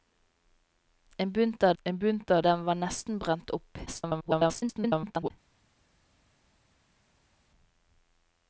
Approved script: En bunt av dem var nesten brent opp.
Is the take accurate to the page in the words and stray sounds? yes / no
no